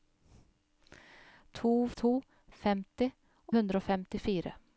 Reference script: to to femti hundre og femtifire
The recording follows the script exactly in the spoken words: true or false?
true